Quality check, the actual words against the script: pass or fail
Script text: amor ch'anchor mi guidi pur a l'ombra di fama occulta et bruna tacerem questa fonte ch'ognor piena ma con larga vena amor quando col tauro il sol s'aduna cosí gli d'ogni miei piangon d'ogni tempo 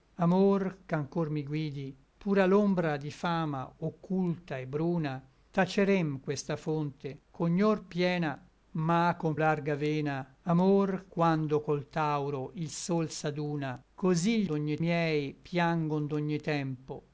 pass